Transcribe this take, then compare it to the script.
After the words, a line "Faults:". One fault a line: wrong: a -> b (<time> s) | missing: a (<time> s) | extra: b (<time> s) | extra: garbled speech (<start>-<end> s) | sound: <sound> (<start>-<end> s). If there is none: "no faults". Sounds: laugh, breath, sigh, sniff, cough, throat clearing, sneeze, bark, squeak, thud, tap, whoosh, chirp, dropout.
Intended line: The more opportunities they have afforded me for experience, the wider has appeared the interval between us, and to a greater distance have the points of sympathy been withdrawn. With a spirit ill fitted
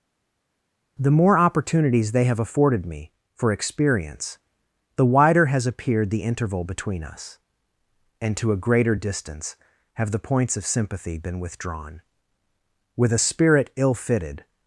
The more opportunities they have afforded me for experience, the wider has appeared the interval between us, and to a greater distance have the points of sympathy been withdrawn. With a spirit ill fitted
Faults:
no faults